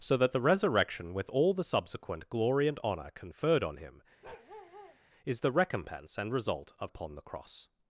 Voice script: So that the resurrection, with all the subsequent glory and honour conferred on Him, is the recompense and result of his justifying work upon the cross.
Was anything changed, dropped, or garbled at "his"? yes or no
yes